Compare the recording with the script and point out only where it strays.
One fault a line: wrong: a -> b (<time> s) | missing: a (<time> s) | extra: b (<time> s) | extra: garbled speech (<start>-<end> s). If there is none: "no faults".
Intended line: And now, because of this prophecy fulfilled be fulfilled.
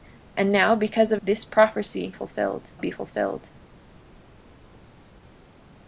no faults